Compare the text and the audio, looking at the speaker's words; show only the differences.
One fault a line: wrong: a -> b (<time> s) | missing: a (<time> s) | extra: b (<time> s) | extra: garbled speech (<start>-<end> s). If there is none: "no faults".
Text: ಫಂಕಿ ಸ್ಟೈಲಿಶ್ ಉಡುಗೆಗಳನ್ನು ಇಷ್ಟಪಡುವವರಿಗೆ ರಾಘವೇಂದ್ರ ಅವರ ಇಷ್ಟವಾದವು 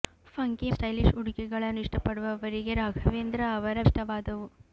no faults